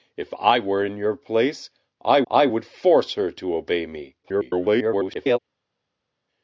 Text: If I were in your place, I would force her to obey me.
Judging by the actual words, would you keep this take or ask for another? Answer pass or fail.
fail